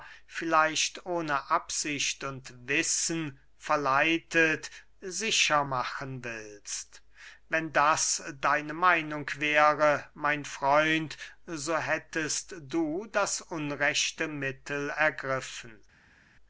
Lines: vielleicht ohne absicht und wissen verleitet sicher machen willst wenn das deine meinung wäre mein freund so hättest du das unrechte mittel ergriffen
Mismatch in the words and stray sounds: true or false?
false